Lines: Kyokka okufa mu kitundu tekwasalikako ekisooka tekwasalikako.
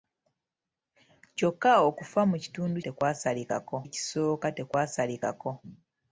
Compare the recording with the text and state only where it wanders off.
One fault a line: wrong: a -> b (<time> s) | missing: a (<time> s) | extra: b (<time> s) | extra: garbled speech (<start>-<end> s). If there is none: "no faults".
no faults